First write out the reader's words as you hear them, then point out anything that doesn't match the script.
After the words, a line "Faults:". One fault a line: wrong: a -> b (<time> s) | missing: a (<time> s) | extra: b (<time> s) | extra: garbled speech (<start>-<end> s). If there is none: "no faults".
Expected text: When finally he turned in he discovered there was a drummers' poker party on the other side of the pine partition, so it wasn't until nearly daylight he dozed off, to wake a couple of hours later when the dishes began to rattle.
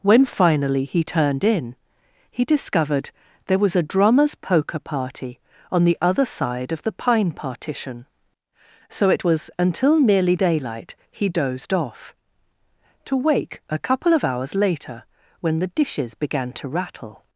When finally he turned in he discovered there was a drummers' poker party on the other side of the pine partition, so it was until nearly daylight he dozed off, to wake a couple of hours later when the dishes began to rattle.
Faults:
wrong: wasn't -> was (9.2 s)